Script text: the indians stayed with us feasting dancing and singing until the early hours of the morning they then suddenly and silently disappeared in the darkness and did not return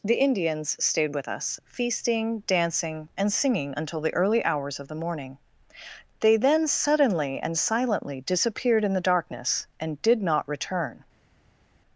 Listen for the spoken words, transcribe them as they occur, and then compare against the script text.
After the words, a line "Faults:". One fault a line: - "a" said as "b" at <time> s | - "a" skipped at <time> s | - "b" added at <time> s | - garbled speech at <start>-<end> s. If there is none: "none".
the indians stayed with us feasting dancing and singing until the early hours of the morning they then suddenly and silently disappeared in the darkness and did not return
Faults:
none